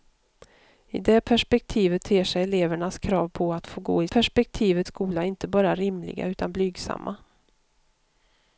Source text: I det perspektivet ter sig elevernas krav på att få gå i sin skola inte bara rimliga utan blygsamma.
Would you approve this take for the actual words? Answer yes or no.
no